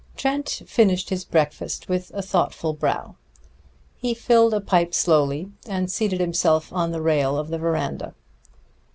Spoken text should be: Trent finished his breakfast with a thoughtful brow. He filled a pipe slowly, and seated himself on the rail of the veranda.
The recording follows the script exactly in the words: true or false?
true